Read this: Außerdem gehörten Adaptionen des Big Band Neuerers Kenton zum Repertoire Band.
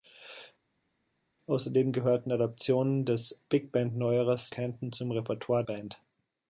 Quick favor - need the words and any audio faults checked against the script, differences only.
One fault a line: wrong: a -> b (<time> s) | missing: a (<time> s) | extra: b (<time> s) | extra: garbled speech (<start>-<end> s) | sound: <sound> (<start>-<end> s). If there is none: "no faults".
no faults